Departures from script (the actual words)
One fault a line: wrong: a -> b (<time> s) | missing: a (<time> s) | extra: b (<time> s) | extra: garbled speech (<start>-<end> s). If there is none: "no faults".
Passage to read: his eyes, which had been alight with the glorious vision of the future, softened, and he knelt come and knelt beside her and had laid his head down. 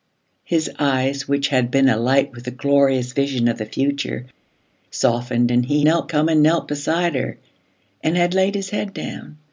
no faults